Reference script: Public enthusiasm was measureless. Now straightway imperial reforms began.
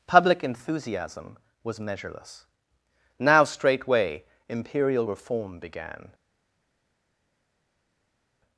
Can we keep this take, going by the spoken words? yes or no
no